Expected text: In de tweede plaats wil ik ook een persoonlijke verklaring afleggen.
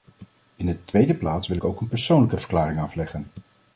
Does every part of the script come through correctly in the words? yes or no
yes